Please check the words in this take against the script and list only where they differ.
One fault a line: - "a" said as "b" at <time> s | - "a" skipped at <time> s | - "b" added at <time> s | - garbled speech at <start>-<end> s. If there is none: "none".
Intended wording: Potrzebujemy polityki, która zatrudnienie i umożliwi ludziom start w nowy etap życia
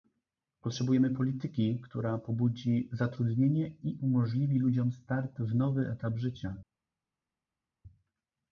- "pobudzi" added at 2.2 s